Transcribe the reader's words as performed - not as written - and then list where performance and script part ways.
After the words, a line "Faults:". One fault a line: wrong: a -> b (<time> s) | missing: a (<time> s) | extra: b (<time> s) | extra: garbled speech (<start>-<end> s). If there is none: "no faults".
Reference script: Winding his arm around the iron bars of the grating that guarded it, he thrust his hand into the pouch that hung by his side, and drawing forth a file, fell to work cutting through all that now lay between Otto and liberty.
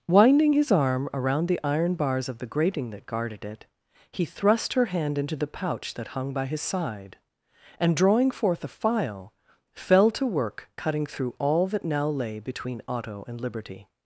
Winding his arm around the iron bars of the grating that guarded it, he thrust her hand into the pouch that hung by his side, and drawing forth a file, fell to work cutting through all that now lay between Otto and liberty.
Faults:
wrong: his -> her (4.7 s)